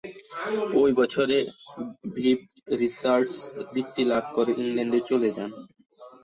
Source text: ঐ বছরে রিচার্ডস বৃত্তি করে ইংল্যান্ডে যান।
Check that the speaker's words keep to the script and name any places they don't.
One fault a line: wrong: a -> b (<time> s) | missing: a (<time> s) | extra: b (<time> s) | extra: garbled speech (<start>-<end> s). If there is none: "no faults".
extra: ভিভ (2.1 s)
extra: লাভ (4.0 s)
extra: চলে (5.1 s)